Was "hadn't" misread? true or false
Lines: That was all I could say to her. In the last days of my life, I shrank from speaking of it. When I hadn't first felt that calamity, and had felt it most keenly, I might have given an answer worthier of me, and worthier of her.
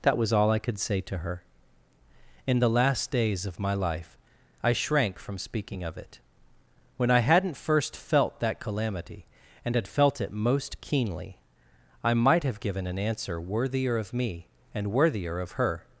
false